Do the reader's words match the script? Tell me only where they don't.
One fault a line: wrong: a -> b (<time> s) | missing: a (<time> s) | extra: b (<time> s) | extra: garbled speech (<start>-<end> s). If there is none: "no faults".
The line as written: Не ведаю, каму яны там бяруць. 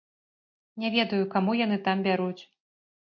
no faults